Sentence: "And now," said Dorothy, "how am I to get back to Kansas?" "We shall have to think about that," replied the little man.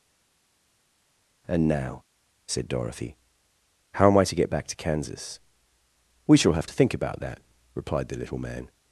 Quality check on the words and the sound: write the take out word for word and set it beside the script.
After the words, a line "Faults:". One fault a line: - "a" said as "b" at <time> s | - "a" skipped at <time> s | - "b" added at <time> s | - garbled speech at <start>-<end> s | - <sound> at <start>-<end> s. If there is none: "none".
"And now," said Dorothy, "how am I to get back to Kansas?" "We shall have to think about that," replied the little man.
Faults:
none